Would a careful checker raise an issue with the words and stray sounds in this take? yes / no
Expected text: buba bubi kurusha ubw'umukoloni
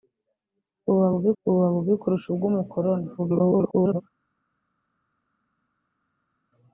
yes